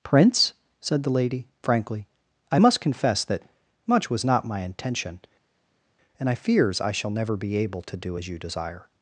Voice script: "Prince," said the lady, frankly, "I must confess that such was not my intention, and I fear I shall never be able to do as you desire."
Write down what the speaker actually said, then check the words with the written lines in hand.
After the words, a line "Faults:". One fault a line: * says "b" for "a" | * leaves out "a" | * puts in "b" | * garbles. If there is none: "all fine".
"Prince," said the lady, frankly, "I must confess that much was not my intention, and I fears I shall never be able to do as you desire."
Faults:
* says "much" for "such"
* says "fears" for "fear"